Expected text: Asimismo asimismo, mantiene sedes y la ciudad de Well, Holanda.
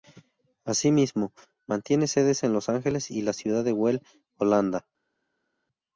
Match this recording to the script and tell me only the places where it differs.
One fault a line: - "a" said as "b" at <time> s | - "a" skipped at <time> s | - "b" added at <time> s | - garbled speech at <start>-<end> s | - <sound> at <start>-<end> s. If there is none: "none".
- "asimismo" skipped at 1.3 s
- "en Los Ángeles" added at 2.4 s